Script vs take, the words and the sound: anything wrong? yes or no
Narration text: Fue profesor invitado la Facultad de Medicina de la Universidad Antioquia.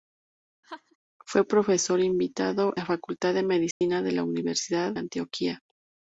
yes